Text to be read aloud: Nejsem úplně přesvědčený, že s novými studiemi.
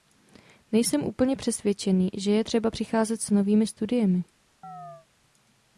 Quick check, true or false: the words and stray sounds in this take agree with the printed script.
false